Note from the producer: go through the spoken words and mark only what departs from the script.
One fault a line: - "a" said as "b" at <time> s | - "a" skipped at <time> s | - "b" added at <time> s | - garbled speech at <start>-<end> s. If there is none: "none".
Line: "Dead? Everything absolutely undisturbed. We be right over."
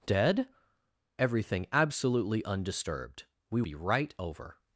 none